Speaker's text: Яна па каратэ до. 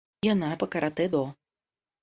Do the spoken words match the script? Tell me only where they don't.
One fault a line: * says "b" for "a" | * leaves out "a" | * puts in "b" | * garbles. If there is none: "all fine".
all fine